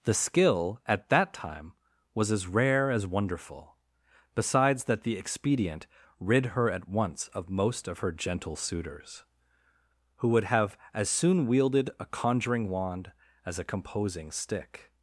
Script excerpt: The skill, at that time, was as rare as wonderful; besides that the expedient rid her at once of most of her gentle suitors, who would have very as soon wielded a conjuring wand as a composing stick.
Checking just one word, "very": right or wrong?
wrong